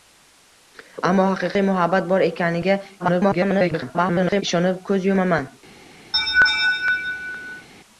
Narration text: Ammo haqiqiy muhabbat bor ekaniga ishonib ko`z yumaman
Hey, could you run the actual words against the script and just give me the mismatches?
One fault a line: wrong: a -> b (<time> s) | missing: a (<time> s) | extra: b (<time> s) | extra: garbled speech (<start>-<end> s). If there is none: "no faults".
extra: garbled speech (3.0-4.4 s)